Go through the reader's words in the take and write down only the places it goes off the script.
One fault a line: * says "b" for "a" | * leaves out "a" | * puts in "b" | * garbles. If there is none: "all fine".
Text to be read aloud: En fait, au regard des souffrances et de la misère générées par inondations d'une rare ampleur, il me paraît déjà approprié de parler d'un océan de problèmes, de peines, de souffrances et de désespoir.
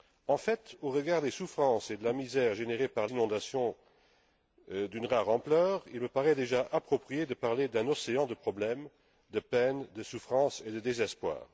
all fine